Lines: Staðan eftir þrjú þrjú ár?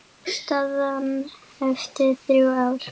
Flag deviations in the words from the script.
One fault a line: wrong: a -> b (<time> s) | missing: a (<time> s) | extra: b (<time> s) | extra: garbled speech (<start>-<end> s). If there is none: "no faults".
missing: þrjú (2.5 s)